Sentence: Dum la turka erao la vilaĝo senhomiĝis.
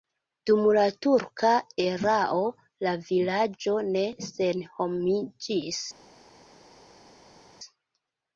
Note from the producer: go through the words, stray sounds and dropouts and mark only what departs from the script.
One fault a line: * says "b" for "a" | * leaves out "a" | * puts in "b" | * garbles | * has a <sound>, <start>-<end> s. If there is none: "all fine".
* puts in "ne"